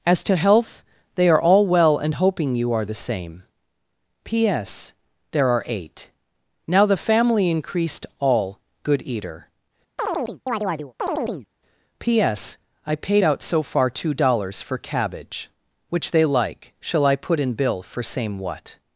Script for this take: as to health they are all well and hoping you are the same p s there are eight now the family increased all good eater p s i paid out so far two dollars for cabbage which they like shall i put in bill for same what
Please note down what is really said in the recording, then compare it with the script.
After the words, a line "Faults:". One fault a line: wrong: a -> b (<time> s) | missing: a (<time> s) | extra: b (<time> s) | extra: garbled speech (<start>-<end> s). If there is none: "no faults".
as to health they are all well and hoping you are the same p s there are eight now the family increased all good eater p s i paid out so far two dollars for cabbage which they like shall i put in bill for same what
Faults:
no faults